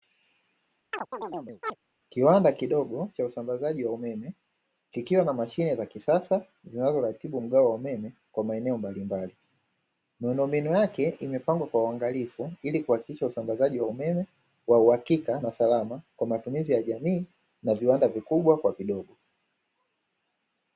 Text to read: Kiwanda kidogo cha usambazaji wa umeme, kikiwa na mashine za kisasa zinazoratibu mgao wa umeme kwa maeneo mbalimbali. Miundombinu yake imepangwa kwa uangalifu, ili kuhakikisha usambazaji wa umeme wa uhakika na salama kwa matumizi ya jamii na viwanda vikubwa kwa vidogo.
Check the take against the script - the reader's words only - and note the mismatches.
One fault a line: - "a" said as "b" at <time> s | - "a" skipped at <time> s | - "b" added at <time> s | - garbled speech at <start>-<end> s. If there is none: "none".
none